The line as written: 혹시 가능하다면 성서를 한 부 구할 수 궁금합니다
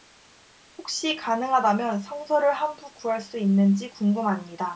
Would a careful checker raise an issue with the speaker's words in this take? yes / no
yes